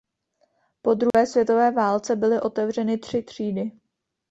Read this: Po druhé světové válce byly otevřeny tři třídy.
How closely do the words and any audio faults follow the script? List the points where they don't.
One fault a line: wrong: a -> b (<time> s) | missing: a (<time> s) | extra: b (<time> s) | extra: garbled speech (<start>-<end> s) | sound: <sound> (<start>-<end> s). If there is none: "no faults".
sound: dropout (1.1-1.1 s)